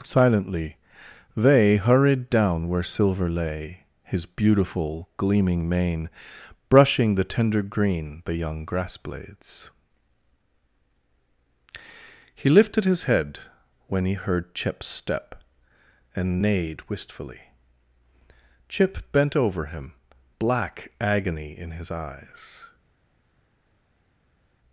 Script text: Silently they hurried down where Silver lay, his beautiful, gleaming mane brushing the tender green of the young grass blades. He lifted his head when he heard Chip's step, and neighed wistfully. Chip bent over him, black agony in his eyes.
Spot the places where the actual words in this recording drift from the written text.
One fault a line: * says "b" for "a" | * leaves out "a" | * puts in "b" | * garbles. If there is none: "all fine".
* leaves out "of"